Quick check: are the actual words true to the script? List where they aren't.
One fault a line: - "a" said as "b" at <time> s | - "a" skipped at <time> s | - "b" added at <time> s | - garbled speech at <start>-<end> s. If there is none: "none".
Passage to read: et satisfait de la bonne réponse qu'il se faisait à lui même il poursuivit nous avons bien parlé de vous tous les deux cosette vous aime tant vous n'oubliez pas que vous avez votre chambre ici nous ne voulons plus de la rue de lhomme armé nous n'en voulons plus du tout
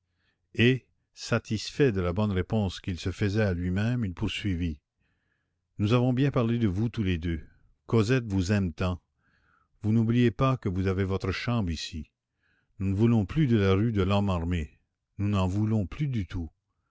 none